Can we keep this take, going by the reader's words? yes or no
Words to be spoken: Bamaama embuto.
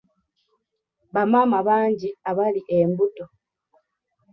no